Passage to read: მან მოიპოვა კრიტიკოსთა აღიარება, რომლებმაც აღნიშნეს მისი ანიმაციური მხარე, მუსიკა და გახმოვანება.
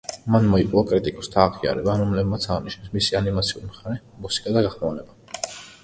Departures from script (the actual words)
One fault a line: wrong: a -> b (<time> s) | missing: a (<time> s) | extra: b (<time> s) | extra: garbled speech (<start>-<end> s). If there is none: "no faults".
no faults